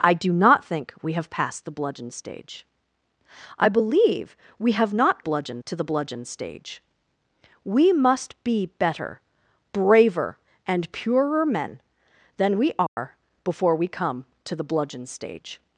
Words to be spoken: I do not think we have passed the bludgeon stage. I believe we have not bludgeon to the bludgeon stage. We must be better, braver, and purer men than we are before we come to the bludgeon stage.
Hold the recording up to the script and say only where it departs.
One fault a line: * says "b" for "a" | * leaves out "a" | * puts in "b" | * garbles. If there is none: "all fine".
all fine